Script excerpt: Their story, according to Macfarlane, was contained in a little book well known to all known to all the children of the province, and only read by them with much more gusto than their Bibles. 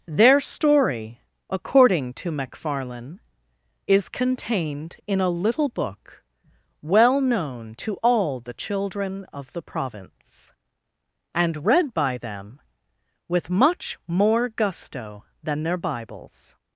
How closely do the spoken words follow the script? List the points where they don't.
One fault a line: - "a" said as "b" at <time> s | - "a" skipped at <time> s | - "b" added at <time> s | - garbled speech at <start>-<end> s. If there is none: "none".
- "was" said as "is" at 3.9 s
- "known to all" skipped at 8.4 s
- "only" skipped at 11.7 s